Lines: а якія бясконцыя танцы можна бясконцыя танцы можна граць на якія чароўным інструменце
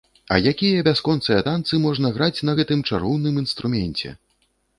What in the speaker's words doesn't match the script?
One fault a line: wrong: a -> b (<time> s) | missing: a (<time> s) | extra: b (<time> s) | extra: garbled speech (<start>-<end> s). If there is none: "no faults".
missing: бясконцыя танцы можна (2.1 s)
wrong: якія -> гэтым (2.6 s)